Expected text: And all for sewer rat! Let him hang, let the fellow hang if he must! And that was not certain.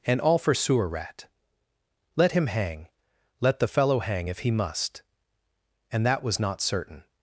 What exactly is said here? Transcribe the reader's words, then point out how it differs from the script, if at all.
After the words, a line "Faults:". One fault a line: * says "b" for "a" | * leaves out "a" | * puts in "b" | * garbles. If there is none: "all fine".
And all for sewer rat! Let him hang, let the fellow hang if he must! And that was not certain.
Faults:
all fine